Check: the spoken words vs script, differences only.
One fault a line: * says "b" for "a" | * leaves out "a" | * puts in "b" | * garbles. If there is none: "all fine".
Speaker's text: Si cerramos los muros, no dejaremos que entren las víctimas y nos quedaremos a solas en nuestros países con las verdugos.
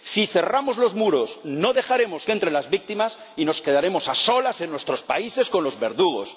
* says "los" for "las"